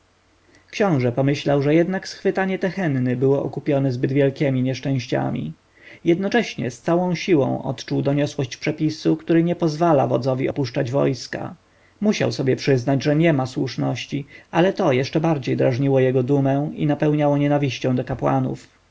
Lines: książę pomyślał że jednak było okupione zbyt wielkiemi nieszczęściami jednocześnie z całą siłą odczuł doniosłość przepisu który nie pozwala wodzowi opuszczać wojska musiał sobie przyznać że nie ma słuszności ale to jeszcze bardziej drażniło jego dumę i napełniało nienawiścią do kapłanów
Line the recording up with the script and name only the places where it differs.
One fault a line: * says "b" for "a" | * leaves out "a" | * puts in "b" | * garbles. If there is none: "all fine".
* puts in "schwytanie tehenny"